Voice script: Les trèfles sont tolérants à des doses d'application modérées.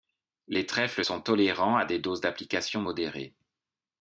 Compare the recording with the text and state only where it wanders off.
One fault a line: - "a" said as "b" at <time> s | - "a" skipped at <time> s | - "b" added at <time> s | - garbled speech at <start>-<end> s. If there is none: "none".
none